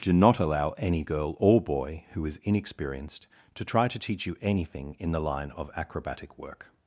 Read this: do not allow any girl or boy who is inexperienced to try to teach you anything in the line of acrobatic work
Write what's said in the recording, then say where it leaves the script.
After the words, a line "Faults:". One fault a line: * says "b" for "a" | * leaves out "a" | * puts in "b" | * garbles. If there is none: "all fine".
do not allow any girl or boy who is inexperienced to try to teach you anything in the line of acrobatic work
Faults:
all fine